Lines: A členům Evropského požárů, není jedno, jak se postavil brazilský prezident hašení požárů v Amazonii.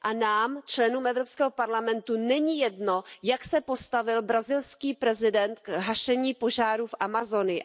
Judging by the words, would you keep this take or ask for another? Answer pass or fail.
fail